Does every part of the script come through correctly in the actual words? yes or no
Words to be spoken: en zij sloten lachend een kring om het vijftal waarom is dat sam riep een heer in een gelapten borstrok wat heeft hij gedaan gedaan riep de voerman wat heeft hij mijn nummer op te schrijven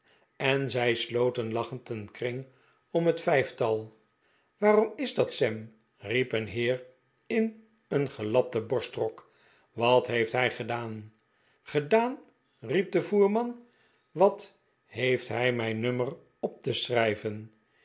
yes